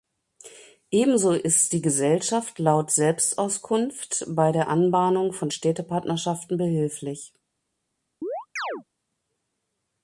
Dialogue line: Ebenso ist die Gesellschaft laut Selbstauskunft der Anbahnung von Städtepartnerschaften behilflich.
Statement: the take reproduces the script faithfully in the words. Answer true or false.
false